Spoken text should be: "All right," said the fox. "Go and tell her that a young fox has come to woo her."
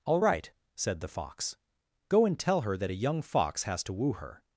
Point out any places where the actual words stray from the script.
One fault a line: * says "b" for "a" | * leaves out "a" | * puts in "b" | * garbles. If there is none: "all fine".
* leaves out "come"